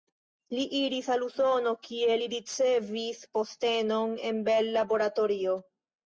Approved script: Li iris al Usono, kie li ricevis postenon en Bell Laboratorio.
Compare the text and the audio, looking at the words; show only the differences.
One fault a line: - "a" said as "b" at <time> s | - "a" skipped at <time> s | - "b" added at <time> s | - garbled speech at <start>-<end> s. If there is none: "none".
none